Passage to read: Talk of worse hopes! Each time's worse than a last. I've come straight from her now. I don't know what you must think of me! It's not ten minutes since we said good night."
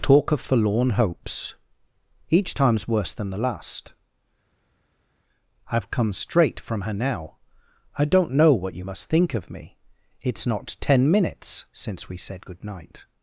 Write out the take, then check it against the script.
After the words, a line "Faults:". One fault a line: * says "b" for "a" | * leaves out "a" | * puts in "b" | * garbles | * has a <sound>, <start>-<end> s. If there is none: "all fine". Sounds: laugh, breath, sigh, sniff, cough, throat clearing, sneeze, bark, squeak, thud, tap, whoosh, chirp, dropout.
Talk of forlorn hopes! Each time's worse than the last. I've come straight from her now. I don't know what you must think of me! It's not ten minutes since we said good night."
Faults:
* says "forlorn" for "worse"
* says "the" for "a"